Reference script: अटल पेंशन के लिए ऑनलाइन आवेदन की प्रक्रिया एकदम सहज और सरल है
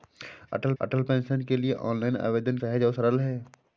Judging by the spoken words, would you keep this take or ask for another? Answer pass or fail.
fail